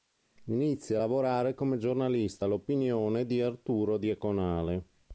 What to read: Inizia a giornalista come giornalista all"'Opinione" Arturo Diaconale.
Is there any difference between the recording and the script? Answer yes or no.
yes